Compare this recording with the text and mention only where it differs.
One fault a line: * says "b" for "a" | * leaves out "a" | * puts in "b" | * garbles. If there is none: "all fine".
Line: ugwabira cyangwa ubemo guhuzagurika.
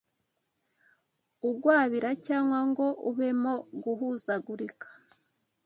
* puts in "ngo"